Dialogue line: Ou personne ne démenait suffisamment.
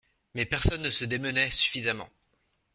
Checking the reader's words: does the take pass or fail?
fail